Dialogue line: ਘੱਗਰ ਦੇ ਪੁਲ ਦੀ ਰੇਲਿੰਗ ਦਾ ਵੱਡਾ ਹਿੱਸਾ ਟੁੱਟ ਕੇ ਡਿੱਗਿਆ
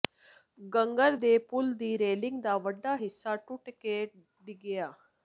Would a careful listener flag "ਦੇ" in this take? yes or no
no